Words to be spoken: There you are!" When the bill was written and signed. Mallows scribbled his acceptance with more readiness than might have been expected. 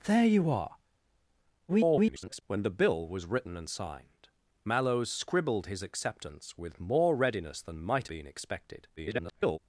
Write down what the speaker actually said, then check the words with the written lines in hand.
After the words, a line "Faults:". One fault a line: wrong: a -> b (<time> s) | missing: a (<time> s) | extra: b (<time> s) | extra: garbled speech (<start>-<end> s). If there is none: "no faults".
There you are!" [garbled] When the bill was written and signed. Mallows scribbled his acceptance with more readiness than might been expected. [garbled]
Faults:
extra: garbled speech (1.7-2.4 s)
missing: have (8.1 s)
extra: garbled speech (9.0-9.6 s)